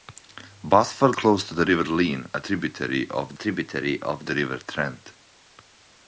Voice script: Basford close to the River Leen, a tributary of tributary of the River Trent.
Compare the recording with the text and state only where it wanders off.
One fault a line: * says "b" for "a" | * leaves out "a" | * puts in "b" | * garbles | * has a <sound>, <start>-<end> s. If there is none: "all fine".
all fine